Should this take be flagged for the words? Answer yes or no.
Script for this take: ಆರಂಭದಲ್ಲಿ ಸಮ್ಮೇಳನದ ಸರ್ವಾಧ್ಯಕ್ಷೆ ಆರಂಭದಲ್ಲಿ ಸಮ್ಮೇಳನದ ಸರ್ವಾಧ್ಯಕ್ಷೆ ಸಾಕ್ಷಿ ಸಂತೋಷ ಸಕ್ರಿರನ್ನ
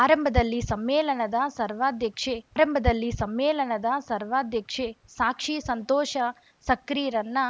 no